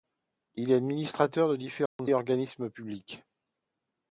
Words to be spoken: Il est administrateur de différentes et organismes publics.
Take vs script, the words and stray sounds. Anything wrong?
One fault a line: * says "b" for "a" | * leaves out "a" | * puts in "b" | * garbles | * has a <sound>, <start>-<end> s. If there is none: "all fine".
* has a dropout, 1.9-2.0 s